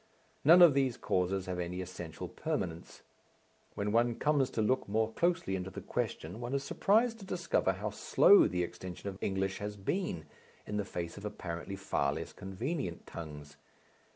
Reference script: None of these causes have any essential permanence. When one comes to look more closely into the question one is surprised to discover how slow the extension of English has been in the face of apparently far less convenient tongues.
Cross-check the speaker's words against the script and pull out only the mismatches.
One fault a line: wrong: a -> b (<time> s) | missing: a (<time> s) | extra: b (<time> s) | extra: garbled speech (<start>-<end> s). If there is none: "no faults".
no faults